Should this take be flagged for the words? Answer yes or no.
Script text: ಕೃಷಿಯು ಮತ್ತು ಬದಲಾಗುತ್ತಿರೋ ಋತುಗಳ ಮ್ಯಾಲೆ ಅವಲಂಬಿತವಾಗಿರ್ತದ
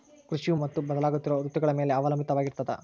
no